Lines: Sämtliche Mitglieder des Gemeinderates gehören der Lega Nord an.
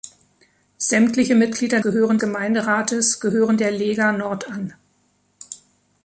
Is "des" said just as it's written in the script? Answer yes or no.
no